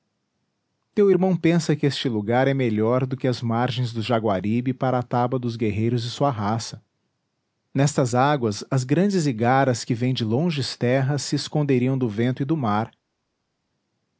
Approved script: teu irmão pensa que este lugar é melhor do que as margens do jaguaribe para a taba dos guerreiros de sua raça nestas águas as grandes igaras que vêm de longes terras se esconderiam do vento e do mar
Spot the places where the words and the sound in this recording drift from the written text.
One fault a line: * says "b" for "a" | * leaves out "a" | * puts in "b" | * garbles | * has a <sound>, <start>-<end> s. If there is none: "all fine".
all fine